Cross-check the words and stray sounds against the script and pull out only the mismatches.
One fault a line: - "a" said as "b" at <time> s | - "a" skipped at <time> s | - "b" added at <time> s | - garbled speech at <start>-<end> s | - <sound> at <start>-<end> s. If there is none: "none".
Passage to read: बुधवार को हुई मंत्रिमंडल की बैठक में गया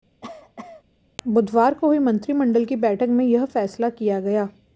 - cough at 0.2-0.8 s
- "यह फैसला किया" added at 3.3 s